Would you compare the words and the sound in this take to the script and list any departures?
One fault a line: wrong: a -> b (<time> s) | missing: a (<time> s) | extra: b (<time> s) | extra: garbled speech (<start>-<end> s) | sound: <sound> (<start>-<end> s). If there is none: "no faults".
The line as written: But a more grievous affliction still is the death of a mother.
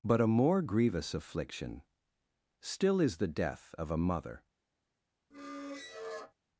sound: squeak (5.3-6.3 s)